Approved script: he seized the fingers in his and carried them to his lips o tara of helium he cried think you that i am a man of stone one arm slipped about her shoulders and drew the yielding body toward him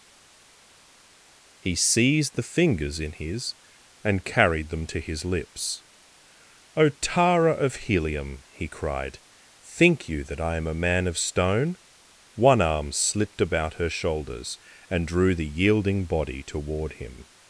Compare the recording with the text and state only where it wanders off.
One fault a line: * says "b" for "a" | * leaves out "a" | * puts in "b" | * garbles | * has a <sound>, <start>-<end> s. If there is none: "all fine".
all fine